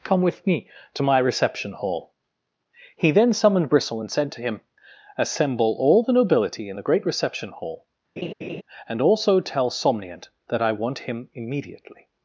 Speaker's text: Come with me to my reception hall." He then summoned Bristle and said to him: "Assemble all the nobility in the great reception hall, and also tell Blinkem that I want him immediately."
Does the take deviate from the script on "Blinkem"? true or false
true